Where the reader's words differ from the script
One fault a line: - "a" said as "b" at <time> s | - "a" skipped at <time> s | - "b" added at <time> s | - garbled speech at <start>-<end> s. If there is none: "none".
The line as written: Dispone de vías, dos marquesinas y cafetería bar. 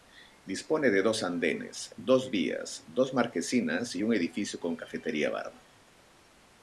- "dos andenes dos" added at 1.0 s
- "un edificio con" added at 4.0 s